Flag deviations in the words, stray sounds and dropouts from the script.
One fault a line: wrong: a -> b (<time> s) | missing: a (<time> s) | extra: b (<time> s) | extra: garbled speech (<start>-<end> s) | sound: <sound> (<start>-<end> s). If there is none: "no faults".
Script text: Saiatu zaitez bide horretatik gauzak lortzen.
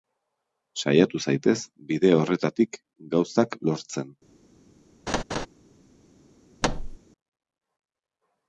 sound: laugh (5.1-5.5 s)
sound: thud (6.6-7.0 s)